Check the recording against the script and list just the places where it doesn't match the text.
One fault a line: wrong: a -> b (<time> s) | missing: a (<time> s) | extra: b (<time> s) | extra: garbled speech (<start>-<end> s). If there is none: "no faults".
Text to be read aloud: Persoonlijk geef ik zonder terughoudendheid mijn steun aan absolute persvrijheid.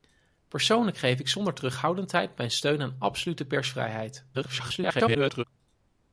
extra: garbled speech (4.3-5.4 s)